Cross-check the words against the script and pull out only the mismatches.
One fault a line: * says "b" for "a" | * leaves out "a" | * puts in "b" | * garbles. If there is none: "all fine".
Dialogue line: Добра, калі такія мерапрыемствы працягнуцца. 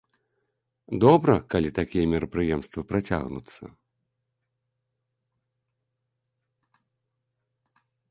all fine